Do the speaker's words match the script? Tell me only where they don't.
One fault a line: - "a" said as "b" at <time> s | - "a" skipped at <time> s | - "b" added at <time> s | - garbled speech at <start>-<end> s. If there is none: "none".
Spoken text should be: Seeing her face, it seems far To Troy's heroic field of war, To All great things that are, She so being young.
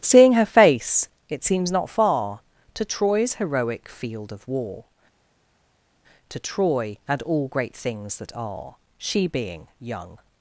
- "not" added at 1.7 s
- "Troy and" added at 6.4 s
- "so" skipped at 9.3 s